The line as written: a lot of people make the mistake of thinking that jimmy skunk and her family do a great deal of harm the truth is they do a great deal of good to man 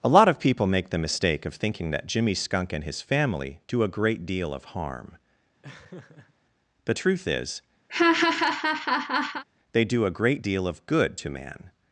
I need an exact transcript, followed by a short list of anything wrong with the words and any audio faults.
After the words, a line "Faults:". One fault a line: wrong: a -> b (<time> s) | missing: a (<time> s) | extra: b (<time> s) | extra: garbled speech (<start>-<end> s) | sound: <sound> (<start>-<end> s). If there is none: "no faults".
a lot of people make the mistake of thinking that jimmy skunk and his family do a great deal of harm the truth is they do a great deal of good to man
Faults:
wrong: her -> his (2.8 s)
sound: laugh (5.6-6.3 s)
sound: laugh (7.9-9.4 s)